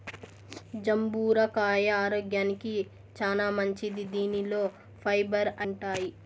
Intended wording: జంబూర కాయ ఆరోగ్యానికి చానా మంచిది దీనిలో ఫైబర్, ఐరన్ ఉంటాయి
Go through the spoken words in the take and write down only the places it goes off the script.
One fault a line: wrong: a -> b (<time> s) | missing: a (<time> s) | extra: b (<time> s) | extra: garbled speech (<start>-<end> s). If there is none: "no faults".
missing: ఐరన్ (5.5 s)